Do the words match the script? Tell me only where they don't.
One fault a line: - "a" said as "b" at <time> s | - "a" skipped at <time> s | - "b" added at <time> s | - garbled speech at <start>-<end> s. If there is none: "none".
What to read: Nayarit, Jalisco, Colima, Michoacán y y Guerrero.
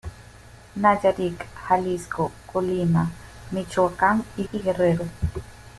none